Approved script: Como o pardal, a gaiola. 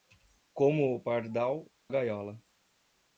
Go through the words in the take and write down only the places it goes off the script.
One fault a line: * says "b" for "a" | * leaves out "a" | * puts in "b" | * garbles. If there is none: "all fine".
* leaves out "a"